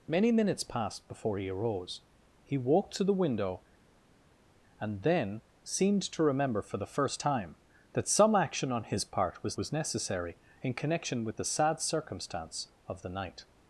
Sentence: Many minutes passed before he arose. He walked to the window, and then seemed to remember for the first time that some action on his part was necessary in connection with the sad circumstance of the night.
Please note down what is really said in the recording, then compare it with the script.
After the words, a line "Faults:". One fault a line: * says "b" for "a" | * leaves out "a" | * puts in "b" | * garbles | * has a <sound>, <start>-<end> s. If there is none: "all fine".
Many minutes passed before he arose. He walked to the window, and then seemed to remember for the first time that some action on his part was was necessary in connection with the sad circumstance of the night.
Faults:
* puts in "was"